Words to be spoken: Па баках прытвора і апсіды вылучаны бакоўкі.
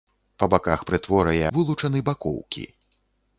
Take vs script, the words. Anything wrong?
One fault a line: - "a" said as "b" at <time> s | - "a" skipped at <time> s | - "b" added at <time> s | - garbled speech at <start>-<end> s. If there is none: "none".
- "апсіды" skipped at 1.4 s